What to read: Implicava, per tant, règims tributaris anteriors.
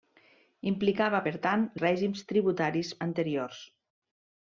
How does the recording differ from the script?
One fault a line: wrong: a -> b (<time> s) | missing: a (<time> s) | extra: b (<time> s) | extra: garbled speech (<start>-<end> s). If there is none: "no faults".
no faults